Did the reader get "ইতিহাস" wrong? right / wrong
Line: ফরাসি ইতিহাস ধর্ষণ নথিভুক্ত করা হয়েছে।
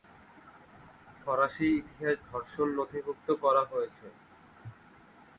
right